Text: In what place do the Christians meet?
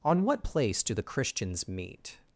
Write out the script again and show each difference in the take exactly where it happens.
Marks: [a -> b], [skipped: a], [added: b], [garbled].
[In -> On] what place do the Christians meet?